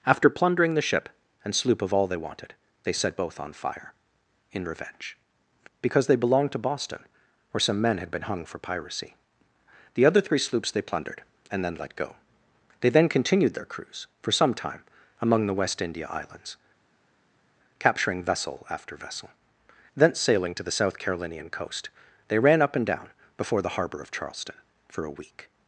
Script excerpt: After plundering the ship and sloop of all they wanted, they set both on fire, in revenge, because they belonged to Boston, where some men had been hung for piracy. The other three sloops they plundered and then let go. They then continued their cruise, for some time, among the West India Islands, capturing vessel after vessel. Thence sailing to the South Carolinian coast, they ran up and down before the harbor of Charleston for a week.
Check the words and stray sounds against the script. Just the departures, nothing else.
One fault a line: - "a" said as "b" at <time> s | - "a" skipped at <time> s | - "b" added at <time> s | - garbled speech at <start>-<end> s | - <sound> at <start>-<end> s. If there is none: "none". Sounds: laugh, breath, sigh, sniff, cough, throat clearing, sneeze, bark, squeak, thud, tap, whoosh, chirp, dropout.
none